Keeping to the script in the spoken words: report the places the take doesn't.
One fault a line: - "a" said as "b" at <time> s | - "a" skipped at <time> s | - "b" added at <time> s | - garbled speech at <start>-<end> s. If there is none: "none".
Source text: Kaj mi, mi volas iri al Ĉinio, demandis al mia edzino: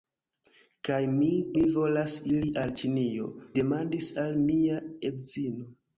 none